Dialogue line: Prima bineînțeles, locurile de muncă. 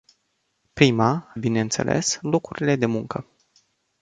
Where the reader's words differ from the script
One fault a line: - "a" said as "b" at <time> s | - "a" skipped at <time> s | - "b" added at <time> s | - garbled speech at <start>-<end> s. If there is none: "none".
none